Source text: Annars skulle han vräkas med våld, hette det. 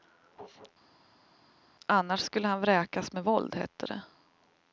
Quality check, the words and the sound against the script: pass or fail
pass